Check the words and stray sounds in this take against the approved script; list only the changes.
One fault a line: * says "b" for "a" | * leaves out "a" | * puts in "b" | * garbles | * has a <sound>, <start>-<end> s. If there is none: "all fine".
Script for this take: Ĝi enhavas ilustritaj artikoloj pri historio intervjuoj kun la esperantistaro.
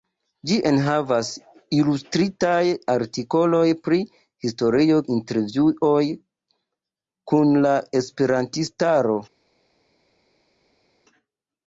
all fine